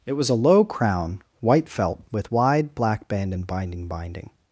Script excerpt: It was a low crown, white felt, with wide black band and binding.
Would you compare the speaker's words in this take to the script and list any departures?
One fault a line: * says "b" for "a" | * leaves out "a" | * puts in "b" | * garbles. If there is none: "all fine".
* puts in "binding"